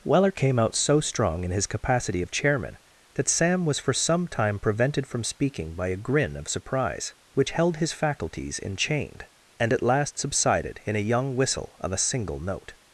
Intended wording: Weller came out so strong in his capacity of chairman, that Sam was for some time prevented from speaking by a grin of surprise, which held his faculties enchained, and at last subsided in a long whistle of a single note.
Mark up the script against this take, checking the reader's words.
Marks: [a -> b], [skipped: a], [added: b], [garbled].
Weller came out so strong in his capacity of chairman, that Sam was for some time prevented from speaking by a grin of surprise, which held his faculties enchained, and at last subsided in a [long -> young] whistle of a single note.